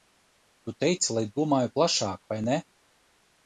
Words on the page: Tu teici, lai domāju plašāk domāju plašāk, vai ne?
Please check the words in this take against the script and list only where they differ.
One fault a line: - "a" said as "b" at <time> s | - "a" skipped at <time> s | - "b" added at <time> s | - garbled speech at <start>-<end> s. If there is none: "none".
- "domāju plašāk" skipped at 2.3 s